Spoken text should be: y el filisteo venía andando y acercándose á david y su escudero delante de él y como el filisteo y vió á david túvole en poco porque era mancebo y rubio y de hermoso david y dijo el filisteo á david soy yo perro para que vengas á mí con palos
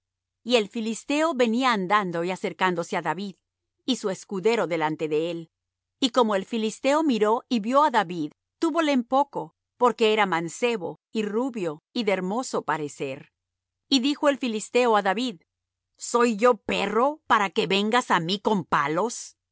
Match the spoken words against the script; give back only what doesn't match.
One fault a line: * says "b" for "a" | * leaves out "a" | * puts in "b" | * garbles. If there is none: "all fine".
* puts in "miró"
* says "parecer" for "david"